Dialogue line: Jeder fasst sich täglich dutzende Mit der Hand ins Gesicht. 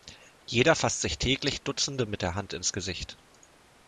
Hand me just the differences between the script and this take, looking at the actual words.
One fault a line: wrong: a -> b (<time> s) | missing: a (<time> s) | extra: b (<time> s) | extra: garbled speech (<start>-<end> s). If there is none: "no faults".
no faults